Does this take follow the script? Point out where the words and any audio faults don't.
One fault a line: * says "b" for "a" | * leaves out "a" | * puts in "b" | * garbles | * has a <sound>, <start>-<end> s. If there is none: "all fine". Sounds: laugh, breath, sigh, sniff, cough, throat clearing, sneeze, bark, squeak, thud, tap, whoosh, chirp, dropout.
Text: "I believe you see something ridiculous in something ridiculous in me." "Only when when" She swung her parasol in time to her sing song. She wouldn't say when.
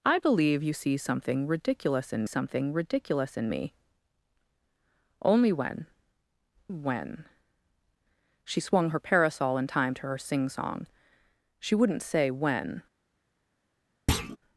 * has a thud, 14.1-14.4 s